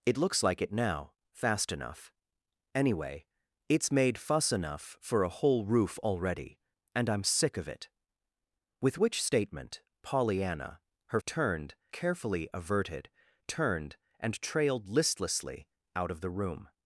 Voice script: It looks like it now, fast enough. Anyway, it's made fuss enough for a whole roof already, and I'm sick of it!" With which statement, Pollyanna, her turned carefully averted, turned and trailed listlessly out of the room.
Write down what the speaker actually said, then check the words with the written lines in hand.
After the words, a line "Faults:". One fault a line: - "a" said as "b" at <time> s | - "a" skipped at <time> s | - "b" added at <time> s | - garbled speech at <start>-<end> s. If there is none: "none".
It looks like it now, fast enough. Anyway, it's made fuss enough for a whole roof already, and I'm sick of it!" With which statement, Pollyanna, her turned carefully averted, turned and trailed listlessly out of the room.
Faults:
none